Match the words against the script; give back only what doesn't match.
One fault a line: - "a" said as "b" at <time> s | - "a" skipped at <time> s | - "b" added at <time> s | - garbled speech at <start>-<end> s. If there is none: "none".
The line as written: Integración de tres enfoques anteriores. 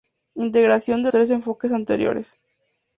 none